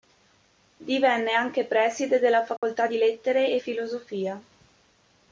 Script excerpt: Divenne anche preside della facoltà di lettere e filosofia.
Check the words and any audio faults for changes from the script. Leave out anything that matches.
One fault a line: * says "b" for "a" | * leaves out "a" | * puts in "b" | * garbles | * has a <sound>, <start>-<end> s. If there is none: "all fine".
* has a dropout, 2.6-2.6 s